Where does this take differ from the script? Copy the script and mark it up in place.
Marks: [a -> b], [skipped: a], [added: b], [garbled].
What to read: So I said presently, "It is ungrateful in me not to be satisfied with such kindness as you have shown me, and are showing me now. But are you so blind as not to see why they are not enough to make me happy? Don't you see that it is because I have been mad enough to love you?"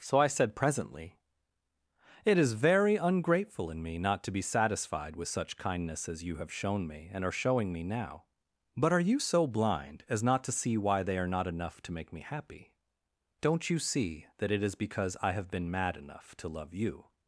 So I said presently, "It is [added: very] ungrateful in me not to be satisfied with such kindness as you have shown me, and are showing me now. But are you so blind as not to see why they are not enough to make me happy? Don't you see that it is because I have been mad enough to love you?"